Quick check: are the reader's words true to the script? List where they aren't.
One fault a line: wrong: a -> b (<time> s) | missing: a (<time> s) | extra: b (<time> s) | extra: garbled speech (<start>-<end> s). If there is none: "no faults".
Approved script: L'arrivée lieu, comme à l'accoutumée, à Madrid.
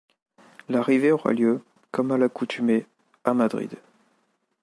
extra: aura (1.1 s)